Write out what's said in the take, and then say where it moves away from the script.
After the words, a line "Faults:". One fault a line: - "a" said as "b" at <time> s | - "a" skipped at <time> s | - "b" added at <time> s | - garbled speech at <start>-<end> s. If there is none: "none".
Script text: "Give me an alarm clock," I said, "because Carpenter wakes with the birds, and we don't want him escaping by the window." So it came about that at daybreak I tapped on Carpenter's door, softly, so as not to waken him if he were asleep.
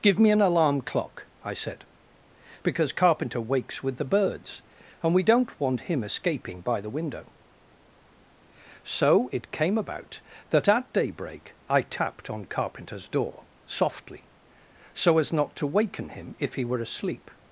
"Give me an alarm clock," I said, "because Carpenter wakes with the birds, and we don't want him escaping by the window." So it came about that at daybreak I tapped on Carpenter's door, softly, so as not to waken him if he were asleep.
Faults:
none